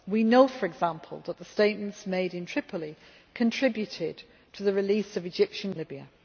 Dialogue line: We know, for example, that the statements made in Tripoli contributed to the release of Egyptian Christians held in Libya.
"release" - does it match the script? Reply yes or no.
yes